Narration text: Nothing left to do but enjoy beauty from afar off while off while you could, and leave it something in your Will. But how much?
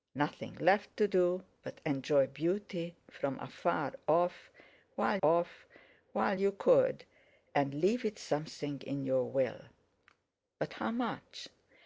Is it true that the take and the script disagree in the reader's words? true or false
false